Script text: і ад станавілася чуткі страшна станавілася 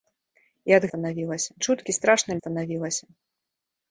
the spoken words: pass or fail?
pass